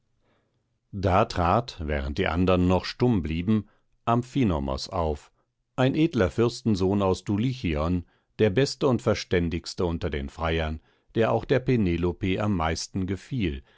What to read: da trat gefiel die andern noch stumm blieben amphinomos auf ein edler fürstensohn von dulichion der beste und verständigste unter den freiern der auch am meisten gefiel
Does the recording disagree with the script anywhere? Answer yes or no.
yes